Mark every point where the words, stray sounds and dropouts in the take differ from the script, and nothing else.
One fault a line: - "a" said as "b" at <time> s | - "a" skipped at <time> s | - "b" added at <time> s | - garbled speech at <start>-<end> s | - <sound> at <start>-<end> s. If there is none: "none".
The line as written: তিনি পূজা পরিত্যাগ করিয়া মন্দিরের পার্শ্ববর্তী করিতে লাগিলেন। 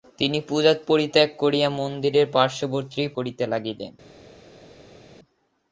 none